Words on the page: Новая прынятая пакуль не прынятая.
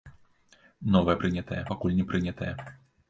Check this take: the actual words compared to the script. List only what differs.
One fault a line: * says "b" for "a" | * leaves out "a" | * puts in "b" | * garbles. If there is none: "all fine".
all fine